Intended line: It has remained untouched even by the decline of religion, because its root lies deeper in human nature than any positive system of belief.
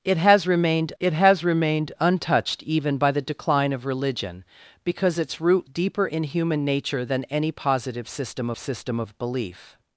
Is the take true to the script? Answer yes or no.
no